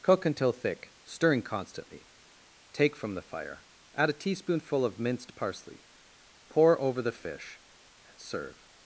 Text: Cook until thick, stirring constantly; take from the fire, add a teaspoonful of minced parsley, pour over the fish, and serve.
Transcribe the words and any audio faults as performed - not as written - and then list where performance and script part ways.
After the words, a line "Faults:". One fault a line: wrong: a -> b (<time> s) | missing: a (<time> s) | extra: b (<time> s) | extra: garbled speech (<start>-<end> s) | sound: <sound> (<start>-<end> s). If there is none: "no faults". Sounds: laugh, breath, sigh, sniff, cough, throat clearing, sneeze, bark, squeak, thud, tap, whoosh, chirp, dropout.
Cook until thick, stirring constantly; take from the fire, add a teaspoonful of minced parsley, pour over the fish, and serve.
Faults:
no faults